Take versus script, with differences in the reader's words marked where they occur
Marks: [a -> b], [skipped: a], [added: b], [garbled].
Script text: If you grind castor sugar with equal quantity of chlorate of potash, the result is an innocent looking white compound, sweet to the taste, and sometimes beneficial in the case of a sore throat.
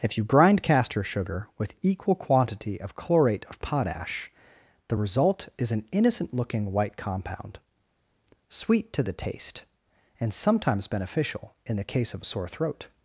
If you grind castor sugar with equal quantity of chlorate of potash, the result is an innocent looking white compound, sweet to the taste, and sometimes beneficial in the case of a sore throat.